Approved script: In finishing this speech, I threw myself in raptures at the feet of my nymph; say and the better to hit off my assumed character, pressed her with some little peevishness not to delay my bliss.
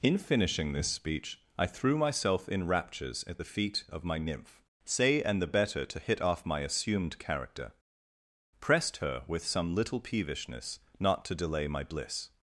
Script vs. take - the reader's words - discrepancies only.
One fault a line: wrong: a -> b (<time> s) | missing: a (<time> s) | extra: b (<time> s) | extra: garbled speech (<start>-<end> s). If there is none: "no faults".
no faults